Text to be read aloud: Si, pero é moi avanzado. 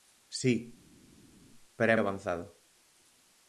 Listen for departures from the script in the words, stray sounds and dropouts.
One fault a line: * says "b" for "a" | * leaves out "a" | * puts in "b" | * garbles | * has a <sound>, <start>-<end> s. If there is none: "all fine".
* leaves out "moi"